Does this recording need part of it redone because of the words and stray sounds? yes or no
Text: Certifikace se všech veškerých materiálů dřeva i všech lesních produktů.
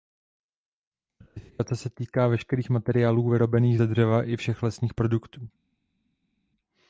yes